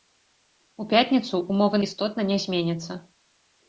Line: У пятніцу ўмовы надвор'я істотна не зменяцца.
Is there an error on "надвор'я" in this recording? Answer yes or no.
yes